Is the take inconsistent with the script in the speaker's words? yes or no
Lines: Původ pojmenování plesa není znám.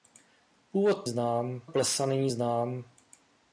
yes